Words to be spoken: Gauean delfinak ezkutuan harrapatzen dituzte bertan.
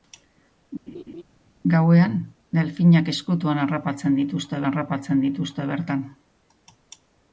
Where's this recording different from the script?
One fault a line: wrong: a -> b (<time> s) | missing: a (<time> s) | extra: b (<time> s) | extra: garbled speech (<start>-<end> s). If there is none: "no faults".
extra: harrapatzen dituzte (4.7 s)